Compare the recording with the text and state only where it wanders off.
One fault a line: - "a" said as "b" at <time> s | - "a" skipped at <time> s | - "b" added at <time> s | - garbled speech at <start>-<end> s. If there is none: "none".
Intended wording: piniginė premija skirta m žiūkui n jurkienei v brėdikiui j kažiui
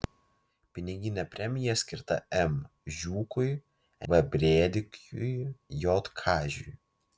- "n jurkienei" skipped at 3.5 s